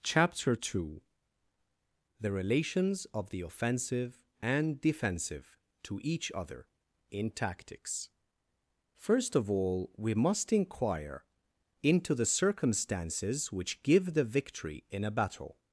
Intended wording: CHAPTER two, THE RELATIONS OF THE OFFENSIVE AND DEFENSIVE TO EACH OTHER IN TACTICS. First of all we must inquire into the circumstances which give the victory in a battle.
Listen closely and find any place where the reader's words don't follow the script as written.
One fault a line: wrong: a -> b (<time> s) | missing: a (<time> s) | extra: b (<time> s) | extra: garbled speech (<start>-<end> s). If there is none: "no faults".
no faults